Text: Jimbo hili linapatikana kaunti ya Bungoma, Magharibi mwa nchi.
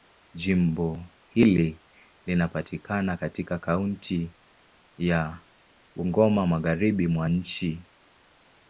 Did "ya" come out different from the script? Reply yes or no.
no